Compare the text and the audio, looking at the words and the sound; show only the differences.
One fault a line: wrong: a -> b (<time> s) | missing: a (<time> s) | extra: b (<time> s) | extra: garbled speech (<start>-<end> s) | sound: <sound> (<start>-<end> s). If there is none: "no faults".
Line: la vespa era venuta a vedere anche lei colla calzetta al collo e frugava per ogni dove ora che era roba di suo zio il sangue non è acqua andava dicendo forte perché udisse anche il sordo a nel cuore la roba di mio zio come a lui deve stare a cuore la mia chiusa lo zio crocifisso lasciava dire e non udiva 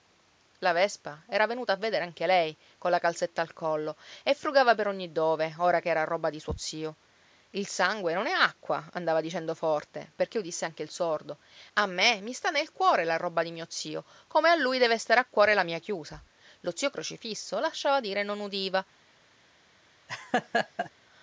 extra: me mi sta (11.8 s)
sound: laugh (20.1-20.9 s)